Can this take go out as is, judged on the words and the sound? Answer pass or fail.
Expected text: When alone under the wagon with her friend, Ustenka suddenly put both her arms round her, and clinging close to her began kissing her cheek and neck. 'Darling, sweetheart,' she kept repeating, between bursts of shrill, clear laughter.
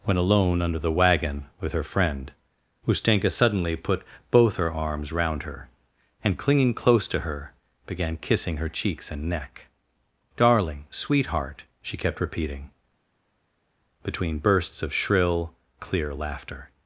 fail